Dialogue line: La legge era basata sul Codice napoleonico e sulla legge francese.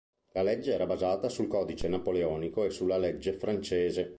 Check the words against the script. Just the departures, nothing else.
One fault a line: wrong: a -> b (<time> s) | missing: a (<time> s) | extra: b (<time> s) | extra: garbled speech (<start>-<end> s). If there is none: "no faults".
no faults